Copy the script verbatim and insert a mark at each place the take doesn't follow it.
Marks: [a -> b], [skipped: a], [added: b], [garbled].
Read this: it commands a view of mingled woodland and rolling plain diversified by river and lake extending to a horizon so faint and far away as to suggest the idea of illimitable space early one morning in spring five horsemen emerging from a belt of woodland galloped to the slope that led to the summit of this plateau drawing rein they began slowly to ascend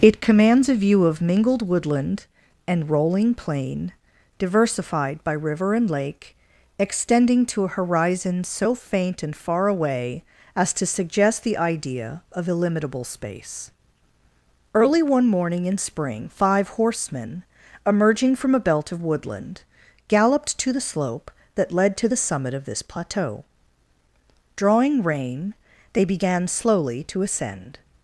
it commands a view of mingled woodland and rolling plain diversified by river and lake extending to a horizon so faint and far away as to suggest the idea of illimitable space early one morning in spring five horsemen emerging from a belt of woodland galloped to the slope that led to the summit of this plateau drawing rein they began slowly to ascend